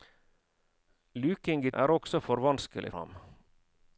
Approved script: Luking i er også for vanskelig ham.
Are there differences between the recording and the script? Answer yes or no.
no